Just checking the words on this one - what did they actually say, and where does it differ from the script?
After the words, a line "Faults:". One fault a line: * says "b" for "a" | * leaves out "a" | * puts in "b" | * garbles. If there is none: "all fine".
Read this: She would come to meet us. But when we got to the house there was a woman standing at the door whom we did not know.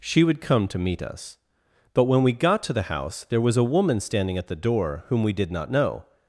She would come to meet us. But when we got to the house there was a woman standing at the door whom we did not know.
Faults:
all fine